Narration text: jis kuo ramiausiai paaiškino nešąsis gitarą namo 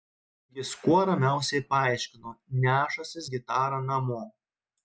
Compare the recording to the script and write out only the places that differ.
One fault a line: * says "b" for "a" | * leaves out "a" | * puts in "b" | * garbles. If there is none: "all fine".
all fine